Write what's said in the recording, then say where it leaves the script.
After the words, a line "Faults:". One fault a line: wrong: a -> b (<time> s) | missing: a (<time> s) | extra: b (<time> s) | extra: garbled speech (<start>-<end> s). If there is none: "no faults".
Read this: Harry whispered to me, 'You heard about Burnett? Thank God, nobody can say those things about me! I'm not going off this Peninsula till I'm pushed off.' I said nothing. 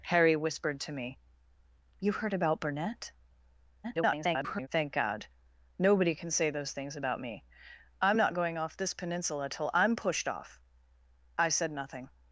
Harry whispered to me, 'You heard about Burnett? [garbled] Thank God, nobody can say those things about me! I'm not going off this Peninsula till I'm pushed off.' I said nothing.
Faults:
extra: garbled speech (3.8-4.7 s)